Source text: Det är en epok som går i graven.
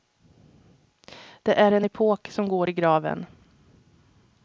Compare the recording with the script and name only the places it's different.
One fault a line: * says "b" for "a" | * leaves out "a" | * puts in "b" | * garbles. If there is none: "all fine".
all fine